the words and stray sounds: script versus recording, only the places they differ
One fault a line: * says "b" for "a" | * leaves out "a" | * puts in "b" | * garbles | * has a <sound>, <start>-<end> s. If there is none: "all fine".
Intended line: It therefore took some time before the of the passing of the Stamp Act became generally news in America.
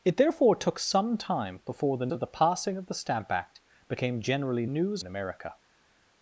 all fine